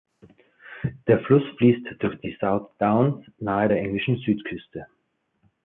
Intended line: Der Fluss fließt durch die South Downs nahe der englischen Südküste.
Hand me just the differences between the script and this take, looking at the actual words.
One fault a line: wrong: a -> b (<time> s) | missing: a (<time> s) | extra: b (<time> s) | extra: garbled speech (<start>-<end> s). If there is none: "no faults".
no faults